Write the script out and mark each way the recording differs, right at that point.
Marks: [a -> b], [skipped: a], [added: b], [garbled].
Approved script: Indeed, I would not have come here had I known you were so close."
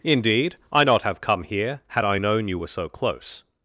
Indeed, I [skipped: would] not have come here had I known you were so close."